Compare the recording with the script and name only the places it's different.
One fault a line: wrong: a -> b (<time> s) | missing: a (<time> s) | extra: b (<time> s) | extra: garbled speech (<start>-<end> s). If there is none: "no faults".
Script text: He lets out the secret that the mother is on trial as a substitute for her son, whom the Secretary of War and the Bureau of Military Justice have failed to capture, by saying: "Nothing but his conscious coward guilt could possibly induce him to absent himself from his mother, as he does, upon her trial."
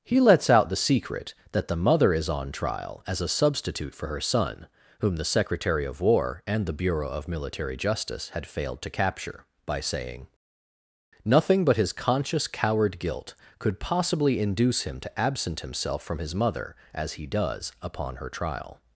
wrong: have -> had (8.3 s)